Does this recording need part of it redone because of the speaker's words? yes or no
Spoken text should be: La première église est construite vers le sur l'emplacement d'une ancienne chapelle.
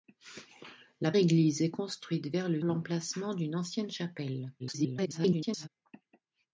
yes